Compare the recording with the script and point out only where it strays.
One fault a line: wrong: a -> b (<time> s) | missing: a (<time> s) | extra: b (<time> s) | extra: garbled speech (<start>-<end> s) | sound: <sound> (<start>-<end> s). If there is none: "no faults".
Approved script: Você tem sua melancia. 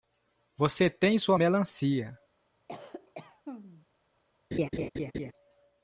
sound: cough (2.7-3.9 s)
sound: laugh (4.5-5.3 s)